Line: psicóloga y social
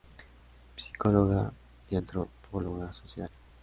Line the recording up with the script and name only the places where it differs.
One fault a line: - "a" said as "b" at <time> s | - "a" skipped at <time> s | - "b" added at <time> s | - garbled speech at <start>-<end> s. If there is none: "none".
- "antropóloga" added at 1.9 s